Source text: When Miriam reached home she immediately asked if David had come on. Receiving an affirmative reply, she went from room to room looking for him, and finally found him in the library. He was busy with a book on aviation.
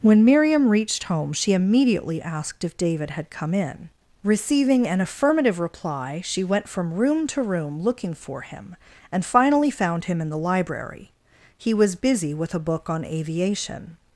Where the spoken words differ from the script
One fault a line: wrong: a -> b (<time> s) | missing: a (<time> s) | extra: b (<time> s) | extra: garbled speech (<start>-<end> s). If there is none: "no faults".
wrong: on -> in (3.5 s)